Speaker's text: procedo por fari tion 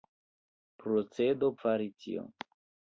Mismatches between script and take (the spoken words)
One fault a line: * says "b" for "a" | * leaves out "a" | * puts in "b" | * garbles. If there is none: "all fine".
* leaves out "por"